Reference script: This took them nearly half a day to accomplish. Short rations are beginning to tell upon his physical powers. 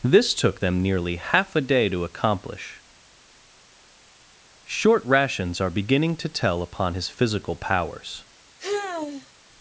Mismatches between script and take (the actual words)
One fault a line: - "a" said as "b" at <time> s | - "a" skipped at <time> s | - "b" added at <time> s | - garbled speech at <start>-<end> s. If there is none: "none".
none